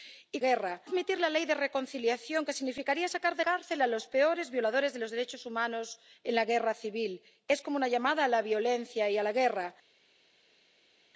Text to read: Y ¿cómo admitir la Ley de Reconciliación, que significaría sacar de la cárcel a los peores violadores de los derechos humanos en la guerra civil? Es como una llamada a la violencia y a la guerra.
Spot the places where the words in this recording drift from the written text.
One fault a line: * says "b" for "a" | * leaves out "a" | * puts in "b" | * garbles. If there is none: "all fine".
* says "guerra" for "cómo"
* leaves out "la"